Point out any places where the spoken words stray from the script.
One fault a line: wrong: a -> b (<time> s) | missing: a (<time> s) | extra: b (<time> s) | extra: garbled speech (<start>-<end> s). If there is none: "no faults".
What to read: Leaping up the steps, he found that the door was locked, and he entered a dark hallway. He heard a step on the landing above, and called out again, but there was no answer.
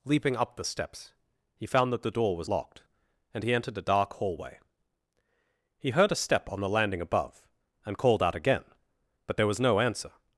no faults